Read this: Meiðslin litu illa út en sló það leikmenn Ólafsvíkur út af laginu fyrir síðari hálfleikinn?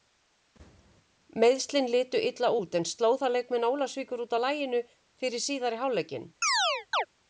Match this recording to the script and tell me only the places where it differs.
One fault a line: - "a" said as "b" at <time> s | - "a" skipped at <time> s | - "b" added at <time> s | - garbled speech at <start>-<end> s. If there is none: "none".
none